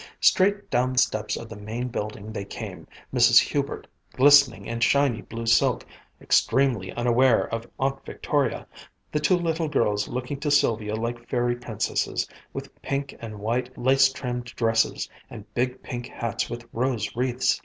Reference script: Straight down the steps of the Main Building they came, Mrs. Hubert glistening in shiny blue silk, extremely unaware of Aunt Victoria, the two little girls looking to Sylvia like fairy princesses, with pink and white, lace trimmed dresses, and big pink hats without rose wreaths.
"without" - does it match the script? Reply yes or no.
no